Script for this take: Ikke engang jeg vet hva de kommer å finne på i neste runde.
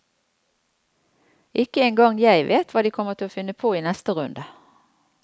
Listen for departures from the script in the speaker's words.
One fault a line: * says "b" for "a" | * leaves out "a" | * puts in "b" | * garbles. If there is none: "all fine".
* puts in "til"